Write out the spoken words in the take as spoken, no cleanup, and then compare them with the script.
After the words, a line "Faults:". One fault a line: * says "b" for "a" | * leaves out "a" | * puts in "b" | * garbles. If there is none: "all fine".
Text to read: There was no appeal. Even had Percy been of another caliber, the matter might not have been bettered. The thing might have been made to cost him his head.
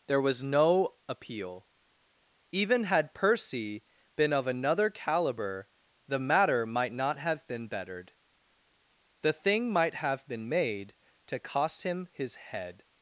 There was no appeal. Even had Percy been of another caliber, the matter might not have been bettered. The thing might have been made to cost him his head.
Faults:
all fine